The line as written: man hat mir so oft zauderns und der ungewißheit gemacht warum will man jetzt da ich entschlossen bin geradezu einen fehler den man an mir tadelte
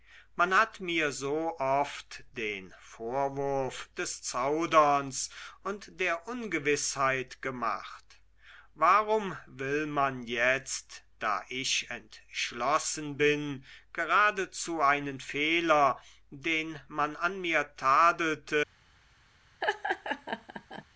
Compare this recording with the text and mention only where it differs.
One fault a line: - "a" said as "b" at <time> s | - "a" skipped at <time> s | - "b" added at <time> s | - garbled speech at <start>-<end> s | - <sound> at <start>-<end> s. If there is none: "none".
- "den vorwurf des" added at 2.4 s
- laugh at 19.6-20.8 s